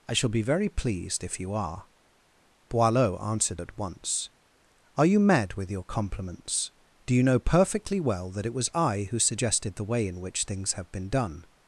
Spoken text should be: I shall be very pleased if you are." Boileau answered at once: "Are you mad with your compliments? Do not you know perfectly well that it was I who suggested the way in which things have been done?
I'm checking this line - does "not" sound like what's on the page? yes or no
no